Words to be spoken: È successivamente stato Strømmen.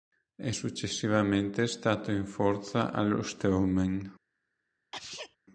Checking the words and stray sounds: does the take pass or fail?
fail